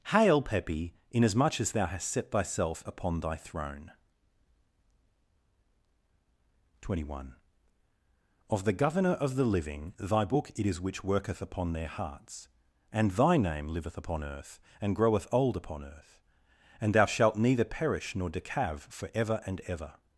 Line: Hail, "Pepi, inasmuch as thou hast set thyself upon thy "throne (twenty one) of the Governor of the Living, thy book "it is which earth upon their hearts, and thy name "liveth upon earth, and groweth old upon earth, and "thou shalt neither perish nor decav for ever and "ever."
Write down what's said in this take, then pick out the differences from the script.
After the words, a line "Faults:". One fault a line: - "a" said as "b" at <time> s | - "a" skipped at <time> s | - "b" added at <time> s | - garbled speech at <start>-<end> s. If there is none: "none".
Hail, "Pepi, inasmuch as thou hast set thyself upon thy "throne (twenty one) of the Governor of the Living, thy book "it is which worketh upon their hearts, and thy name "liveth upon earth, and groweth old upon earth, and "thou shalt neither perish nor decav for ever and "ever."
Faults:
- "earth" said as "worketh" at 11.0 s